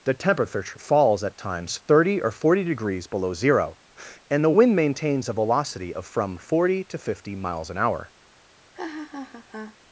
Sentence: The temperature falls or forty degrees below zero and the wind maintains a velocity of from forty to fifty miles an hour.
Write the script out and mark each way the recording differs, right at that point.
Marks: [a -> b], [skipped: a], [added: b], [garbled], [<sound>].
The temperature falls [added: at times thirty] or forty degrees below zero and the wind maintains a velocity of from forty to fifty miles an hour. [laugh]